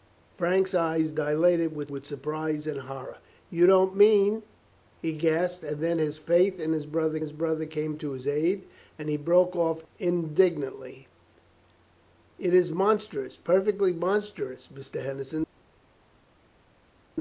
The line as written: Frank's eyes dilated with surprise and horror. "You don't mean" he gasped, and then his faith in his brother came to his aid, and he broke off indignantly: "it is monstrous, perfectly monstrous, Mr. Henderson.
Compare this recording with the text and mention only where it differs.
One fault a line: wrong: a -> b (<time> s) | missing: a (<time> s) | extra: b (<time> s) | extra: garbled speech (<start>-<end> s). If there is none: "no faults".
extra: with (1.9 s)
extra: his brother (7.2 s)